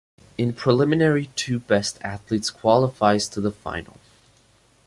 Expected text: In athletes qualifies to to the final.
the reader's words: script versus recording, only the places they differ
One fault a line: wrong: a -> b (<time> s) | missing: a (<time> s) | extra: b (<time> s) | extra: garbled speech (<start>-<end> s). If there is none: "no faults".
extra: preliminary two best (0.5 s)
missing: to (3.4 s)